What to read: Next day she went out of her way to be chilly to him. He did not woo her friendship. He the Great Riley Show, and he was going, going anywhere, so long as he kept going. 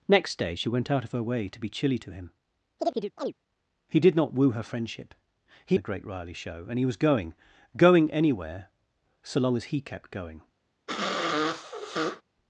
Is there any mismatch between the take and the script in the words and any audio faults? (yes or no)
yes